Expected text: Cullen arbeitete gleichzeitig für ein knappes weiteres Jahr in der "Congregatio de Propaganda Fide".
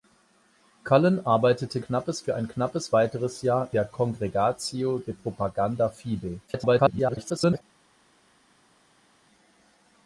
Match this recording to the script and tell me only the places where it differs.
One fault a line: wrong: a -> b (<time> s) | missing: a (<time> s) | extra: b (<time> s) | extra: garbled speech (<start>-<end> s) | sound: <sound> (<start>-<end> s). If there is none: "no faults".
wrong: gleichzeitig -> knappes (1.8 s)
missing: in (3.7 s)
extra: garbled speech (6.5-7.6 s)